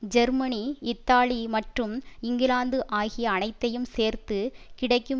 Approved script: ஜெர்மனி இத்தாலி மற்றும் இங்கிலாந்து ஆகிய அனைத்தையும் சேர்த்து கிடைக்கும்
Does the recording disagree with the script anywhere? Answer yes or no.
no